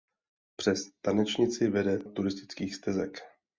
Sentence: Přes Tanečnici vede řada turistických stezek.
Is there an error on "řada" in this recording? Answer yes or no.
yes